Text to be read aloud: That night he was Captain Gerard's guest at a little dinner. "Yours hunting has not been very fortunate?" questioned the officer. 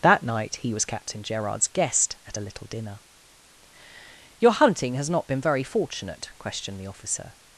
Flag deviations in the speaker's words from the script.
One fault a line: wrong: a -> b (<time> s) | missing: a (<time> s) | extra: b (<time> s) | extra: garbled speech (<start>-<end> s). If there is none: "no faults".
wrong: Yours -> Your (4.4 s)